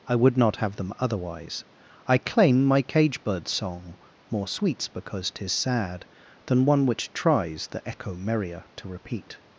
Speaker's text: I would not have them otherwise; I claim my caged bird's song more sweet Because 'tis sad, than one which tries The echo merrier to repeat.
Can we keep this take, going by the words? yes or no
no